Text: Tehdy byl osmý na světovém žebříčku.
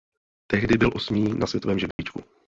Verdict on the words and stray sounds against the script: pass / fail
fail